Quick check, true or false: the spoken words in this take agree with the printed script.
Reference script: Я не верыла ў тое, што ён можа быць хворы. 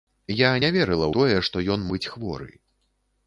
false